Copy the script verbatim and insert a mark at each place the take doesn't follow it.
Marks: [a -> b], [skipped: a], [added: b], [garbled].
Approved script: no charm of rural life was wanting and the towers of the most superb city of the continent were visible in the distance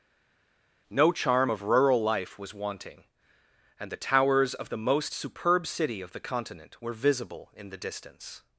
no charm of rural life was wanting and the towers of the most superb city of the continent were visible in the distance